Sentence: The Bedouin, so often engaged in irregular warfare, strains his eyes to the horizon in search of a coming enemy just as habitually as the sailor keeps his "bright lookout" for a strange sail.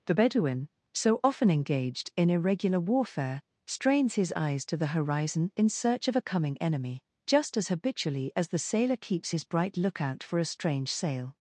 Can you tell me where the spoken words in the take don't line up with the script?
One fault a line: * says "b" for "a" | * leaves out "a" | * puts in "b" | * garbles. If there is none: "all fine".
all fine